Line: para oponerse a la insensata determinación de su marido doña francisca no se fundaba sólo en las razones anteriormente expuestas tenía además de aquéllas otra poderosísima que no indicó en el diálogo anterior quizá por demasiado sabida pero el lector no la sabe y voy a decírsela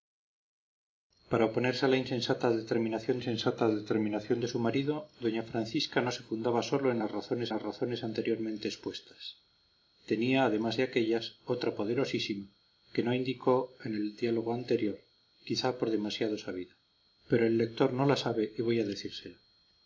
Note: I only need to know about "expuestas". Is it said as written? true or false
true